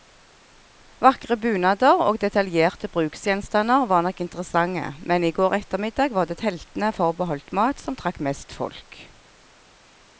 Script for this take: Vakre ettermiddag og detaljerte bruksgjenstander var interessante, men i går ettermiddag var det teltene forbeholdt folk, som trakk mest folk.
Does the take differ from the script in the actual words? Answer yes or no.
yes